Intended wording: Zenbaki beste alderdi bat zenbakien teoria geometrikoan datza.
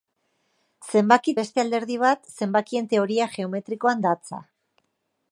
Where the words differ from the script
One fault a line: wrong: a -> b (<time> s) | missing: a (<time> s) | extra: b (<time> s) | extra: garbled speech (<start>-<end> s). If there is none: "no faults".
no faults